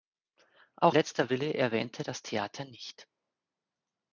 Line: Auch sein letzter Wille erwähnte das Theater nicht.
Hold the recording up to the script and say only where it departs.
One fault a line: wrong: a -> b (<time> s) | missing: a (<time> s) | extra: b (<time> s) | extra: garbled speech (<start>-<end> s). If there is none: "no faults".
missing: sein (0.9 s)